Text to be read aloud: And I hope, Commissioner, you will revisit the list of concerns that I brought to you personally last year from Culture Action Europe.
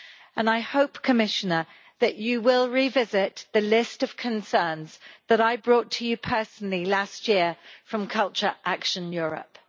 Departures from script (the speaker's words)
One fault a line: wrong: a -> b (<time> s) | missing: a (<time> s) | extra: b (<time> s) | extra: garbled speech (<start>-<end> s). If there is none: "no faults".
extra: that (2.0 s)